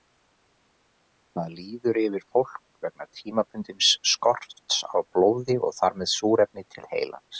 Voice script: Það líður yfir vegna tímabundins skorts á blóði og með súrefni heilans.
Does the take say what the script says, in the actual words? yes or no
no